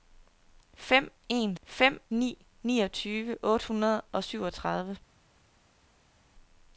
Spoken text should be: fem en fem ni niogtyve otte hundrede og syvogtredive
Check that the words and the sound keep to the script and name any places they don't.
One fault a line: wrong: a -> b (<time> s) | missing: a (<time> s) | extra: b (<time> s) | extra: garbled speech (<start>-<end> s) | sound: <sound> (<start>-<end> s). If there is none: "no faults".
no faults